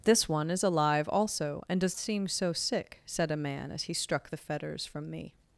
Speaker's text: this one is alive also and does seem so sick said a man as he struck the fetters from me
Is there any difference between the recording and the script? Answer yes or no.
no